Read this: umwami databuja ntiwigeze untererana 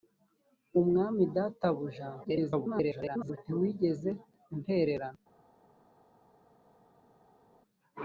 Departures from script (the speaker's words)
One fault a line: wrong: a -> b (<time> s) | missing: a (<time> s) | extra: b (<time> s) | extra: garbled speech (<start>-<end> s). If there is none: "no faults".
extra: garbled speech (2.2-3.4 s)